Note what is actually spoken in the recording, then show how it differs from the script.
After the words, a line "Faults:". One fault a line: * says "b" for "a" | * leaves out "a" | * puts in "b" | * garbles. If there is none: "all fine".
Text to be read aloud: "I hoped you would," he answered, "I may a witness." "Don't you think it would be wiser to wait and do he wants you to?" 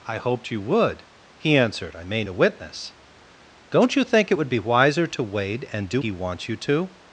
"I hoped you would," he answered, "I may a witness." "Don't you think it would be wiser to wait and do he wants you to?"
Faults:
all fine